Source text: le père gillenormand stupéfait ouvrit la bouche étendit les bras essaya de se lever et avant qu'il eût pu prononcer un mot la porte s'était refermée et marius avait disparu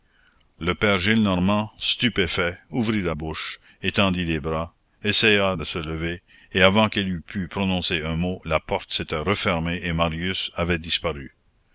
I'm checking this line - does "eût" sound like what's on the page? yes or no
yes